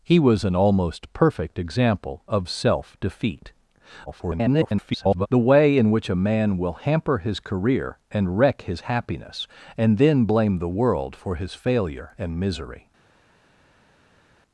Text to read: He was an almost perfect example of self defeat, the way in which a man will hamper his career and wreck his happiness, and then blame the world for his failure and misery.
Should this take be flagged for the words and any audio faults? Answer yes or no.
yes